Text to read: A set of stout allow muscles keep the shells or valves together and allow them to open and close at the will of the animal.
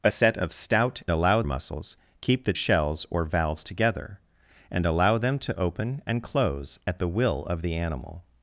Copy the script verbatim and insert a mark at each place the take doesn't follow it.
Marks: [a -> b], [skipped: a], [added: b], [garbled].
A set of stout allow muscles keep the shells or valves together and allow them to open and close at the will of the animal.